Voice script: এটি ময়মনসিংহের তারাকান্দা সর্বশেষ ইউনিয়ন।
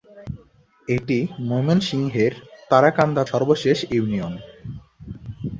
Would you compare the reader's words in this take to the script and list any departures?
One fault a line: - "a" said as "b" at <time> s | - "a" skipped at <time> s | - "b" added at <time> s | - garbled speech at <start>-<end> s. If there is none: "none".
none